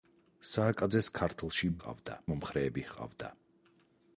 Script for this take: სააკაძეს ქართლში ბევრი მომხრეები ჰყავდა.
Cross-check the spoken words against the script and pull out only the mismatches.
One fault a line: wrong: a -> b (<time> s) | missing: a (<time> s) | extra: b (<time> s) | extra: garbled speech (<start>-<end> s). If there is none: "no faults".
wrong: ბევრი -> ჰყავდა (1.8 s)